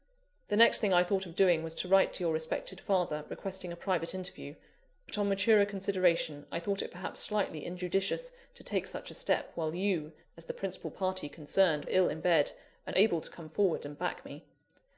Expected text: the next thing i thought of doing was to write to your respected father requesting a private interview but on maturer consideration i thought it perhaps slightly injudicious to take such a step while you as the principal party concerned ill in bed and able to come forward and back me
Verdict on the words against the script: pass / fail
pass